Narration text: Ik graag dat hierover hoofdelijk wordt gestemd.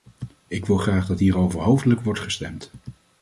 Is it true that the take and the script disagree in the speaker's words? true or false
true